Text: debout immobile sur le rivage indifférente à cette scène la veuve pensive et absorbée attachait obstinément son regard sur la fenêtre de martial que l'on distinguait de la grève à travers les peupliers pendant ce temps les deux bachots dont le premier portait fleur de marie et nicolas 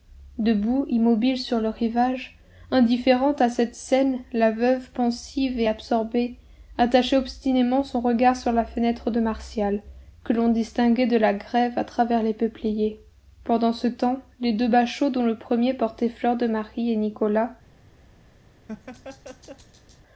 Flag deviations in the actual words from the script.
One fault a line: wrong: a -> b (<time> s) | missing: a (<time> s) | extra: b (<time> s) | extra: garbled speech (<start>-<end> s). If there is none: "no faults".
no faults